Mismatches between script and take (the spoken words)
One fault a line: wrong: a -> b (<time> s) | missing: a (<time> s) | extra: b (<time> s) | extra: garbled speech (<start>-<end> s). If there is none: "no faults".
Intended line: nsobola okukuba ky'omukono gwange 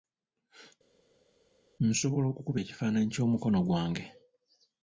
extra: ekifaananyi (2.6 s)